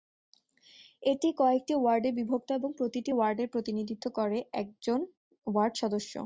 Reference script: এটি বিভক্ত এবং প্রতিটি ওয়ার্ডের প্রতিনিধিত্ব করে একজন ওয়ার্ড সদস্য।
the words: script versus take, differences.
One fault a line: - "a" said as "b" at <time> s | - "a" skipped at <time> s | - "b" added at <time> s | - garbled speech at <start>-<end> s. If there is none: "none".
- "কয়েকটি ওয়ার্ডে" added at 1.4 s